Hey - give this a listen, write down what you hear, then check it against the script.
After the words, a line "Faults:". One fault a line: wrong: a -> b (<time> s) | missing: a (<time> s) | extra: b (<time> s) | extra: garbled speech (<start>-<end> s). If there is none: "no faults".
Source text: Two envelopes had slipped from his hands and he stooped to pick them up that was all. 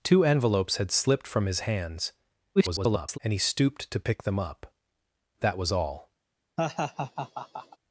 Two envelopes had slipped from his hands [garbled] and he stooped to pick them up that was all.
Faults:
extra: garbled speech (2.6-3.2 s)